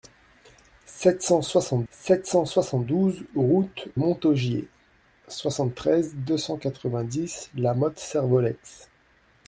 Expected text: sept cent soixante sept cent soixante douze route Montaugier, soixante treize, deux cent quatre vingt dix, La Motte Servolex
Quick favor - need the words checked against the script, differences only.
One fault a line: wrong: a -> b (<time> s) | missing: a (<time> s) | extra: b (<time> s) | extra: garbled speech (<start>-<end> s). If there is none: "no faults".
no faults